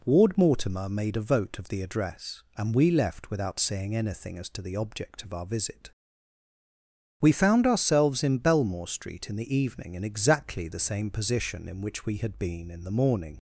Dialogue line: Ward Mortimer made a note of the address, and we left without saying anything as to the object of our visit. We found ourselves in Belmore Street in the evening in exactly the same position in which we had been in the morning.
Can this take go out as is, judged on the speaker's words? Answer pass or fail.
fail